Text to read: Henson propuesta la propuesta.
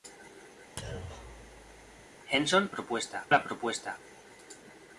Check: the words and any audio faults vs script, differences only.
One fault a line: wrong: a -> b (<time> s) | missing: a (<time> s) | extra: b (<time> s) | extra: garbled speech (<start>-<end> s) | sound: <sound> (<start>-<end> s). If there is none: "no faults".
sound: thud (0.8-2.1 s)